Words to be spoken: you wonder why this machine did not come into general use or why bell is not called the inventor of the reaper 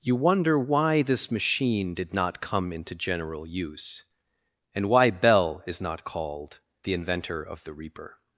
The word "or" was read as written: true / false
false